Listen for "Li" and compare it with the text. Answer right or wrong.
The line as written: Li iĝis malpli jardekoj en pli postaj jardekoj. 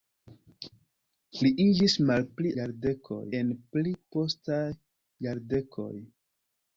right